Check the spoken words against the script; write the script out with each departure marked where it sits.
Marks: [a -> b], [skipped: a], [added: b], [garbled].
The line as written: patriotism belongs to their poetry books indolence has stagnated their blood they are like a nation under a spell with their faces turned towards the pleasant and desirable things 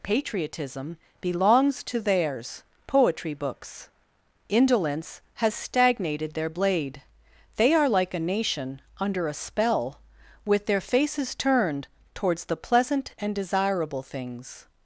patriotism belongs to [their -> theirs] poetry books indolence has stagnated their [blood -> blade] they are like a nation under a spell with their faces turned towards the pleasant and desirable things